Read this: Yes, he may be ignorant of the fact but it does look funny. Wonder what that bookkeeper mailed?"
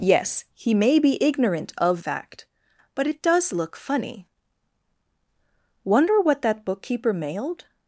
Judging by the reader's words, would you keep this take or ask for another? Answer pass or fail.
fail